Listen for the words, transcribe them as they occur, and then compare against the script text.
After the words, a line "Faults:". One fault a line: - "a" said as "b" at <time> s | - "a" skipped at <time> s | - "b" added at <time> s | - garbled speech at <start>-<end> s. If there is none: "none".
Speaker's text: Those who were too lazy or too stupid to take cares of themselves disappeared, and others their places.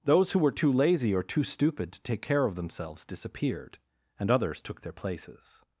Those who were too lazy or too stupid to take care of themselves disappeared, and others took their places.
Faults:
- "cares" said as "care" at 2.2 s
- "took" added at 4.6 s